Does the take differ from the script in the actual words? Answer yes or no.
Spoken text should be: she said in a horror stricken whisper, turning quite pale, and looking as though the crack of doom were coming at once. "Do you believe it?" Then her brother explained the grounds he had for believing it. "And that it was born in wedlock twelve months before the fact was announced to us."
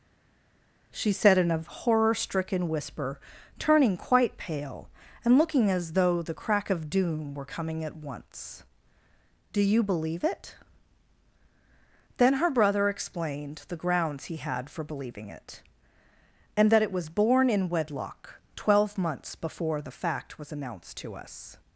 no